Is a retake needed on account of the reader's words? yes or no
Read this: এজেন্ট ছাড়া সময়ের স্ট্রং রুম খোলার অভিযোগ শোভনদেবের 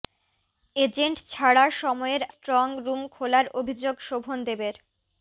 no